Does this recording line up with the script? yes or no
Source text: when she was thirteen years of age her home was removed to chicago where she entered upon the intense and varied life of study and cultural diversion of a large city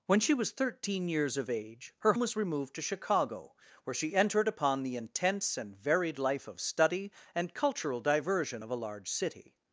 no